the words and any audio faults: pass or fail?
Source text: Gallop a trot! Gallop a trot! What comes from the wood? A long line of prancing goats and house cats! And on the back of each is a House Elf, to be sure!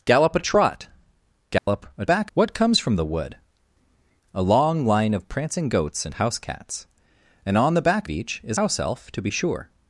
fail